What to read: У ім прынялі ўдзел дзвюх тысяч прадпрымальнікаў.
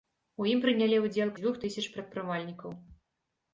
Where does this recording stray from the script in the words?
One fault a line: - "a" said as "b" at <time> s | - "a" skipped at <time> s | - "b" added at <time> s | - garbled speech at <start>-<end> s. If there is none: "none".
none